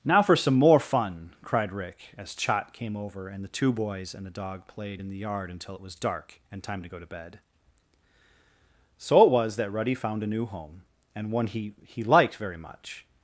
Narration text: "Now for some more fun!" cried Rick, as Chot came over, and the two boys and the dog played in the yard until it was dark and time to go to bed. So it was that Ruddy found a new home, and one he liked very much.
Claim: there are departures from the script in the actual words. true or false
true